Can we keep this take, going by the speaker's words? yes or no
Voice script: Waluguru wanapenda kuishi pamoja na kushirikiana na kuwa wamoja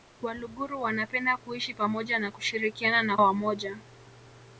no